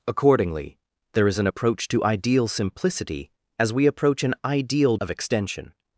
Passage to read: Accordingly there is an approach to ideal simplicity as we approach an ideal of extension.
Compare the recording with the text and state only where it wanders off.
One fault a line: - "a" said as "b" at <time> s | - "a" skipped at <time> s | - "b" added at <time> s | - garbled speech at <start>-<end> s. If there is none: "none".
none